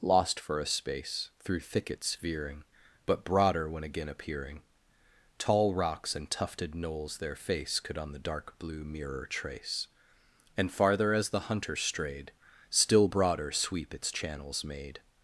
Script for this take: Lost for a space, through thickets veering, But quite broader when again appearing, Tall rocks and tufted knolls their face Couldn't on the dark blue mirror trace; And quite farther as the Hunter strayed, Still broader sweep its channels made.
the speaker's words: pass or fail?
fail